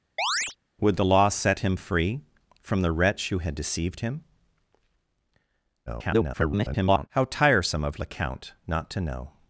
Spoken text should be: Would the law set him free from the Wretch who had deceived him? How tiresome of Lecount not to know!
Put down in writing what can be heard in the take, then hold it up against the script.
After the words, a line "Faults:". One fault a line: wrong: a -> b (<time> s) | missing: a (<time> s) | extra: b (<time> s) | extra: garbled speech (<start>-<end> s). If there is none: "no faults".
Would the law set him free from the Wretch who had deceived him? [garbled] How tiresome of Lecount not to know!
Faults:
extra: garbled speech (5.9-7.1 s)